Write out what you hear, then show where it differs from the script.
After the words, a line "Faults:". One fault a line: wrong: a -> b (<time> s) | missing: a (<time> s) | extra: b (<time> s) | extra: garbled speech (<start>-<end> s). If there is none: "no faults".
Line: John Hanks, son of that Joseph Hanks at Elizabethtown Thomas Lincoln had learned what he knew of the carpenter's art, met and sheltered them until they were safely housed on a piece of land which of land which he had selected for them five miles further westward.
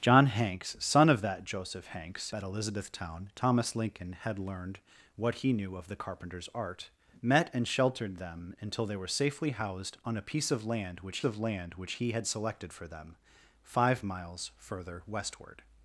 John Hanks, son of that Joseph Hanks at Elizabethtown Thomas Lincoln had learned what he knew of the carpenter's art, met and sheltered them until they were safely housed on a piece of land which of land which he had selected for them five miles further westward.
Faults:
no faults